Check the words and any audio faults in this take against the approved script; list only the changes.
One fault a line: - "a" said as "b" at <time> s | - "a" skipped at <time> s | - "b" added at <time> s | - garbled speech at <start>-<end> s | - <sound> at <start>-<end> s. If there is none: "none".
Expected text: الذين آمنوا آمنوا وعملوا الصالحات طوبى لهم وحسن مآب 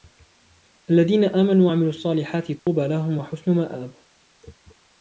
- "آمنوا" skipped at 1.7 s
- dropout at 2.6-2.7 s